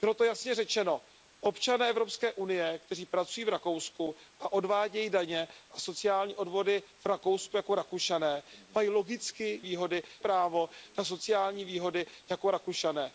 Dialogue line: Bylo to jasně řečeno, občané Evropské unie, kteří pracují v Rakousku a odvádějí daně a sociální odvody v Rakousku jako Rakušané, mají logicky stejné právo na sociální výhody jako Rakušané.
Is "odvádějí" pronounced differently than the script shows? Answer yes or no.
no